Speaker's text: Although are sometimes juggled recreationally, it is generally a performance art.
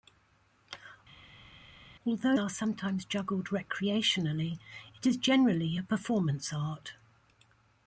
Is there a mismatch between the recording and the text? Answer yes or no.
no